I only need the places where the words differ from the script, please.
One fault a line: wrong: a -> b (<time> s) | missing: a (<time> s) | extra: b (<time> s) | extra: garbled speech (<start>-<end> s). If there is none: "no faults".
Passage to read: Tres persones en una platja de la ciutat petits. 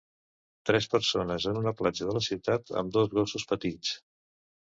extra: amb dos gossos (2.8 s)